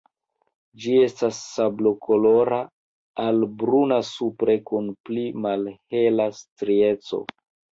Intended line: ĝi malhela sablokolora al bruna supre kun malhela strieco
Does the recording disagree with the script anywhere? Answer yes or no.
yes